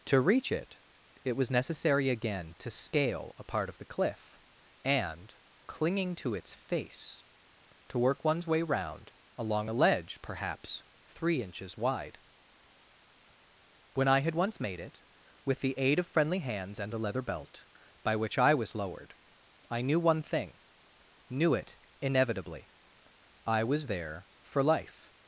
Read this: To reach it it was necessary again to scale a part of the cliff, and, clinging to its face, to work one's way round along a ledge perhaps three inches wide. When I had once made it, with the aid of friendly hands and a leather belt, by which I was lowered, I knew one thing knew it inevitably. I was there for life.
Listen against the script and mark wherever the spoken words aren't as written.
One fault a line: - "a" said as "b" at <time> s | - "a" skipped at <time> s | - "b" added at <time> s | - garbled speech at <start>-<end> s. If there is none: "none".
none